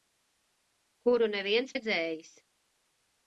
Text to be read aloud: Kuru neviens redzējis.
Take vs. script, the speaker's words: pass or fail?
pass